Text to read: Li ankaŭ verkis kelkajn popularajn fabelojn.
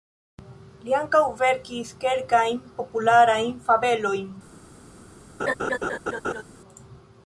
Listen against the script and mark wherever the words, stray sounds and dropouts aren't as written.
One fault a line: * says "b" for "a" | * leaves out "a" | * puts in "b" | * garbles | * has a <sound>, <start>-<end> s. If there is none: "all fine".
* has a laugh, 5.4-6.4 s